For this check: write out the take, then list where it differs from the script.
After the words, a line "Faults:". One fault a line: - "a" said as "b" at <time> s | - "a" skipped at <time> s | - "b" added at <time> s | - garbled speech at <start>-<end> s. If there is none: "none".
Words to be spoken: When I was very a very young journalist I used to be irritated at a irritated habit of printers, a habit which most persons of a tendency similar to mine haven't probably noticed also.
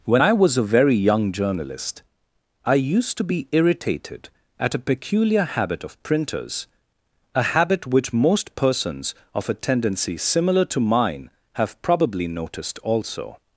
When I was a very young journalist I used to be irritated at a peculiar habit of printers, a habit which most persons of a tendency similar to mine have probably noticed also.
Faults:
- "very" skipped at 0.6 s
- "irritated" said as "peculiar" at 4.8 s
- "haven't" said as "have" at 11.5 s